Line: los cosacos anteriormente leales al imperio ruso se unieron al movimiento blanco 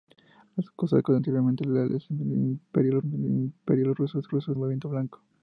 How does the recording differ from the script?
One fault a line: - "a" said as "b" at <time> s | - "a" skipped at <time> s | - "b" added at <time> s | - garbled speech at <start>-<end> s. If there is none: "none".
- "al imperio" added at 3.0 s
- "unieron" said as "ruso" at 4.3 s